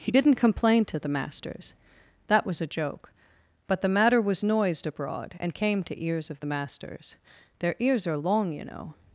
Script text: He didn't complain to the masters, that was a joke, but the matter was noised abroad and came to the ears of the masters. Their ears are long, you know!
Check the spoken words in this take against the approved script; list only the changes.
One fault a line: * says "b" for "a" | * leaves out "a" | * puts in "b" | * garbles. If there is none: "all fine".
* leaves out "the"